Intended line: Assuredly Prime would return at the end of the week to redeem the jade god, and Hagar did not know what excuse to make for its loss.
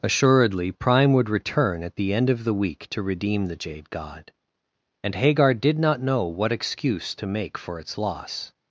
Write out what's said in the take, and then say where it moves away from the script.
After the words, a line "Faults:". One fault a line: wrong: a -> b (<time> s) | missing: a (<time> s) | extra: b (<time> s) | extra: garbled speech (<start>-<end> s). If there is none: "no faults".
Assuredly Prime would return at the end of the week to redeem the jade god, and Hagar did not know what excuse to make for its loss.
Faults:
no faults